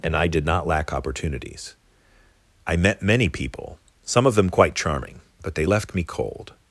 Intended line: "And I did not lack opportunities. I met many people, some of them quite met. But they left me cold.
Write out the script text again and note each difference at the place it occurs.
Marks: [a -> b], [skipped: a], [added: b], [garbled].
"And I did not lack opportunities. I met many people, some of them quite [met. -> charming] But they left me cold.